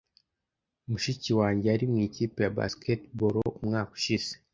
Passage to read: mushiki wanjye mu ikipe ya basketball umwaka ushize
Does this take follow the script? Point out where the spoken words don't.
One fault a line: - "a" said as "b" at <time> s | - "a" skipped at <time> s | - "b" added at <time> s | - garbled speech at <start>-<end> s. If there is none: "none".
- "yari" added at 1.7 s